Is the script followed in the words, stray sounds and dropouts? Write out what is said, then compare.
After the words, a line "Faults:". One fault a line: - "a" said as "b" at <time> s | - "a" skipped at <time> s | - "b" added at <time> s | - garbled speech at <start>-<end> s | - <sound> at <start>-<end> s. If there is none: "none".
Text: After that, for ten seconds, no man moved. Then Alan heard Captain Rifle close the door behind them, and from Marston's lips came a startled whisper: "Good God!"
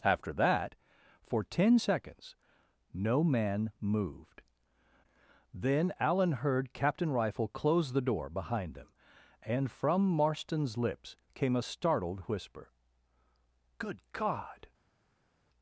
After that, for ten seconds, no man moved. Then Alan heard Captain Rifle close the door behind them, and from Marston's lips came a startled whisper: "Good God!"
Faults:
none